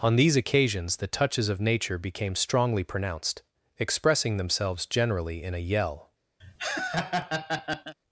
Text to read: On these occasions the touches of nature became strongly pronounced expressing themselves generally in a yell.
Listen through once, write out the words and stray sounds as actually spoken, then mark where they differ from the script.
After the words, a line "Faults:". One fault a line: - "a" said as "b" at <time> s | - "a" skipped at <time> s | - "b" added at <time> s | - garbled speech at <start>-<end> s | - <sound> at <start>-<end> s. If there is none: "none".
On these occasions the touches of nature became strongly pronounced expressing themselves generally in a yell.
Faults:
- laugh at 6.4-7.9 s